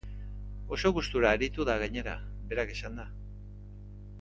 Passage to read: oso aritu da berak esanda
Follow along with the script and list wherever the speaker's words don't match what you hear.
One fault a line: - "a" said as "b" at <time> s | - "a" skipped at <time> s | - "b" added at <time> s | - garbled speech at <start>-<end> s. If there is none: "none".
- "gustura" added at 0.9 s
- "gainera" added at 1.8 s